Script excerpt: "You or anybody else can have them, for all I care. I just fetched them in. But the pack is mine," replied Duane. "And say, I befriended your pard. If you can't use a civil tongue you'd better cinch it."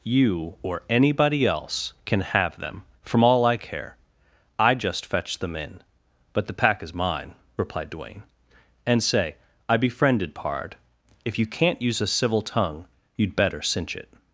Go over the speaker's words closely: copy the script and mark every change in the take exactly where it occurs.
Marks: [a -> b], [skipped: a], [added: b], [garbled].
"You or anybody else can have them, [for -> from] all I care. I just fetched them in. But the pack is mine," replied Duane. "And say, I befriended [skipped: your] pard. If you can't use a civil tongue you'd better cinch it."